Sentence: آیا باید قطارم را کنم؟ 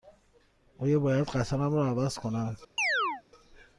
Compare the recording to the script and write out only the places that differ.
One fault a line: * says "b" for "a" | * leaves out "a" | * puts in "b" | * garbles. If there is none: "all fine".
* puts in "عوض"